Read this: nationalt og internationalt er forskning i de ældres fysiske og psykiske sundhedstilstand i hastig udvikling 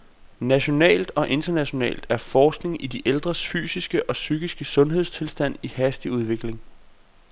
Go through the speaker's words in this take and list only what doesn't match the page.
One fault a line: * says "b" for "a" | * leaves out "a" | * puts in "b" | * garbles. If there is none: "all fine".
all fine